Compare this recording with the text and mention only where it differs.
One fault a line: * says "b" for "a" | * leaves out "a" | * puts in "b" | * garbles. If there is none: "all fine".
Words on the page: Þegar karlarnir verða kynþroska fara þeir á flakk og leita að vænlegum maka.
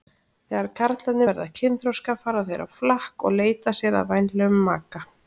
* puts in "sér"